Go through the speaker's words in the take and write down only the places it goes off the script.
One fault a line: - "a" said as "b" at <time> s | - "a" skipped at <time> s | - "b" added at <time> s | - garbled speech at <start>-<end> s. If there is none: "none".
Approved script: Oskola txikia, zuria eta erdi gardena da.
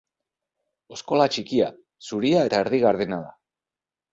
none